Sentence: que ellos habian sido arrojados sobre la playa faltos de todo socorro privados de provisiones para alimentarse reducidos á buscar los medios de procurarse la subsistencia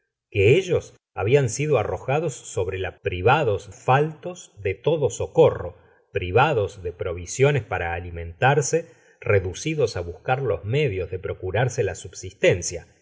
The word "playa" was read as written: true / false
false